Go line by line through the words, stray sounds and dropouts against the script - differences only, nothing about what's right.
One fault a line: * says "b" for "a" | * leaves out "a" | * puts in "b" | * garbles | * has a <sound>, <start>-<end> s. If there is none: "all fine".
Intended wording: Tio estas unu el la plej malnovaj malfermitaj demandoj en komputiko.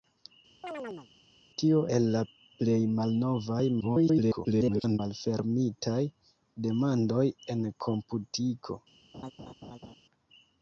* has a chirp, 0.6-1.1 s
* leaves out "estas unu"
* garbles
* has a laugh, 9.1-10.0 s